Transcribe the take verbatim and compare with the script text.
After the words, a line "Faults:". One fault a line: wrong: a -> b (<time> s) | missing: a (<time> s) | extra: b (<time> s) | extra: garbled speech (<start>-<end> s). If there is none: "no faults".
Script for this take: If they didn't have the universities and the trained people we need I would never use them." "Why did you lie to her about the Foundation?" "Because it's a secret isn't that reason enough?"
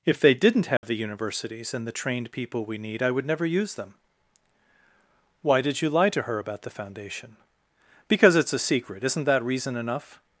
If they didn't have the universities and the trained people we need I would never use them." "Why did you lie to her about the Foundation?" "Because it's a secret isn't that reason enough?"
Faults:
no faults